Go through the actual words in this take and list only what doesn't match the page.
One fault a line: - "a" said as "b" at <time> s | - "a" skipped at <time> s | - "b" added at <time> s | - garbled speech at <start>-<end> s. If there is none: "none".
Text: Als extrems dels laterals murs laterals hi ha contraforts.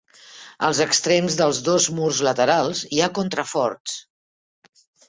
- "laterals" said as "dos" at 1.7 s